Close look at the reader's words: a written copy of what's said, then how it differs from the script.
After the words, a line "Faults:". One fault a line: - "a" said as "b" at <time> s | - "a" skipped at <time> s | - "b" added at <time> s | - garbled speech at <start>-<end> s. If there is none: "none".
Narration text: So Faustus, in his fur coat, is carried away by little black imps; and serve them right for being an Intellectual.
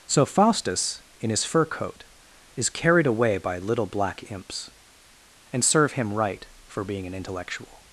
So Faustus, in his fur coat, is carried away by little black imps; and serve him right for being an Intellectual.
Faults:
- "them" said as "him" at 5.9 s